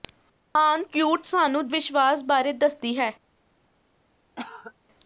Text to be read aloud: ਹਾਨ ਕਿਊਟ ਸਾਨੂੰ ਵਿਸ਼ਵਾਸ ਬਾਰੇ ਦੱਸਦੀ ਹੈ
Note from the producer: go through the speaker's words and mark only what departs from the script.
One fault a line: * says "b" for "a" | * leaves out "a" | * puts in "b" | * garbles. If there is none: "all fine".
all fine